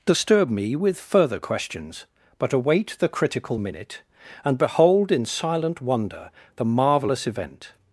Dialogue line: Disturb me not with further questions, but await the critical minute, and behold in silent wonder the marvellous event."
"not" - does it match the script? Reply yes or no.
no